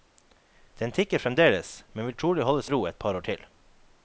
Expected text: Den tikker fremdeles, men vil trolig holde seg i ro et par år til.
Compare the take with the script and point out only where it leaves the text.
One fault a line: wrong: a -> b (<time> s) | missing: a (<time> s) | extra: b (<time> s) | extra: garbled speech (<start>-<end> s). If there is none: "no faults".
missing: seg (2.6 s)